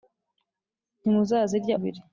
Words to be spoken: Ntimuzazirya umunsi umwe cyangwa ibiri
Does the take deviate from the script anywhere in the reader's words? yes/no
yes